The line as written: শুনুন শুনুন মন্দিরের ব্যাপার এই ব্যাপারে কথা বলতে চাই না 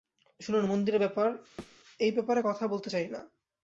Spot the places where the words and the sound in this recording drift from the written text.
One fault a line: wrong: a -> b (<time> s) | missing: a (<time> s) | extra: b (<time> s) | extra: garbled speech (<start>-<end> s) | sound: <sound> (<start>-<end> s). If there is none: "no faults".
missing: শুনুন (0.6 s)
sound: thud (1.6-1.8 s)